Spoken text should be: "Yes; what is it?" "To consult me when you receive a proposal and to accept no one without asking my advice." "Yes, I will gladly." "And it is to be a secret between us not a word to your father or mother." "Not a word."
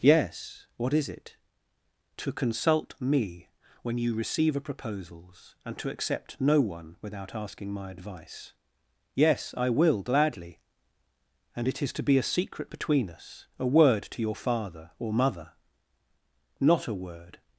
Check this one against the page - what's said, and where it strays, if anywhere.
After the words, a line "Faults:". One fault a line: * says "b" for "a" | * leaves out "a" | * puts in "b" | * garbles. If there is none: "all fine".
"Yes; what is it?" "To consult me when you receive a proposals and to accept no one without asking my advice." "Yes, I will gladly." "And it is to be a secret between us a word to your father or mother." "Not a word."
Faults:
* says "proposals" for "proposal"
* leaves out "not"